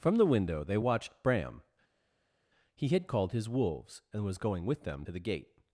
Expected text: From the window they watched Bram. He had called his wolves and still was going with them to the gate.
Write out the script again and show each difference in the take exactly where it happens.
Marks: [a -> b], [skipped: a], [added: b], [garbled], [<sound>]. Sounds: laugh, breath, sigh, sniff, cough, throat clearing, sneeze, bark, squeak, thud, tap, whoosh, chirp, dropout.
From the window they watched Bram. He had called his wolves and [skipped: still] was going with them to the gate.